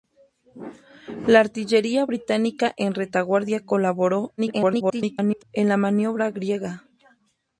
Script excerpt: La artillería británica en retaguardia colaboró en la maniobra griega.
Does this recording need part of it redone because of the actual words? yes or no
yes